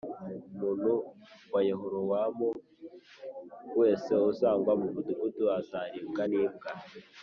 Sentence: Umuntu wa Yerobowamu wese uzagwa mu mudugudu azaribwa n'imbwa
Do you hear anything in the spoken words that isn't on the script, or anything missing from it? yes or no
no